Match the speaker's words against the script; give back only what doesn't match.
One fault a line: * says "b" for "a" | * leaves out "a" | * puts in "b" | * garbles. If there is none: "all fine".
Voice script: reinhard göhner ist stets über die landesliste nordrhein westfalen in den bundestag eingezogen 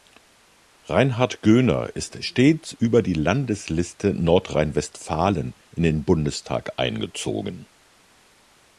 all fine